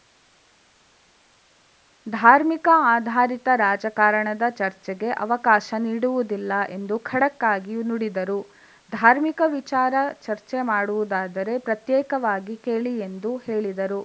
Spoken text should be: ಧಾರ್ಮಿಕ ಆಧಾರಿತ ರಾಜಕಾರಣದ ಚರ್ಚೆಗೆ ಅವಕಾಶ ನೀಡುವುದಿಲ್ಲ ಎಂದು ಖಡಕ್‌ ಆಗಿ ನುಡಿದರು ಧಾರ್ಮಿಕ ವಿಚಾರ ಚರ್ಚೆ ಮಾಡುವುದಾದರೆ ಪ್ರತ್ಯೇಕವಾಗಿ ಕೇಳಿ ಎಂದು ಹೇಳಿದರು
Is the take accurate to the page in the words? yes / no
yes